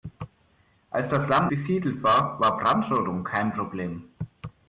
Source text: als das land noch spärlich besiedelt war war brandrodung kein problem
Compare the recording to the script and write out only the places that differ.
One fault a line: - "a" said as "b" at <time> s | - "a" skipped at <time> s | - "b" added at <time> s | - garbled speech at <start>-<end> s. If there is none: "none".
- "noch spärlich" skipped at 1.5 s